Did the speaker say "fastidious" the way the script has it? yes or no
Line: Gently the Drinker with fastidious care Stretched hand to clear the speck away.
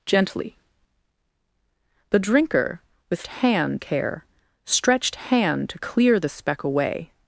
no